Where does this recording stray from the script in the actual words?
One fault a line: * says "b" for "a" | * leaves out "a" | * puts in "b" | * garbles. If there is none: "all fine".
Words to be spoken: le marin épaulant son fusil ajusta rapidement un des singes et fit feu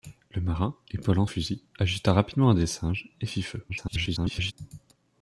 * leaves out "son"
* garbles